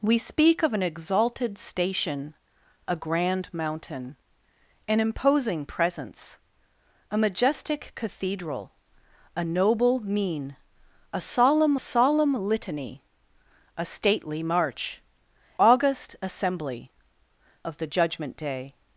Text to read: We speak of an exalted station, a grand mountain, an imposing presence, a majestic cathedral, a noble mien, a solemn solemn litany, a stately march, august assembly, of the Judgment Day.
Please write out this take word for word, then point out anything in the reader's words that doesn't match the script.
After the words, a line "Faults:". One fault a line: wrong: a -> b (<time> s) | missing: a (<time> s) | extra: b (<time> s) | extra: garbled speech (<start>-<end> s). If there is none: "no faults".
We speak of an exalted station, a grand mountain, an imposing presence, a majestic cathedral, a noble mien, a solemn solemn litany, a stately march, august assembly, of the Judgment Day.
Faults:
no faults